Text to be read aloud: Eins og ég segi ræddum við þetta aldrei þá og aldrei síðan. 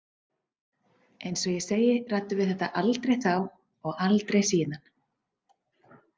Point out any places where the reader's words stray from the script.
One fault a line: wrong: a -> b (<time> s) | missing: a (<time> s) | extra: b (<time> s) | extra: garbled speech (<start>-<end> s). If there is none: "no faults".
no faults